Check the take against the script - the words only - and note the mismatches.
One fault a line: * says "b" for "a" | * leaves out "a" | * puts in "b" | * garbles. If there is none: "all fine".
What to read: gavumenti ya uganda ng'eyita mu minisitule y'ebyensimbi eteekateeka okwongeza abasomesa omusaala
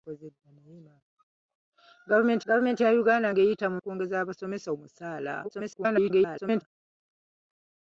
* puts in "gavumenti"
* leaves out "minisitule y'ebyensimbi eteekateeka"
* garbles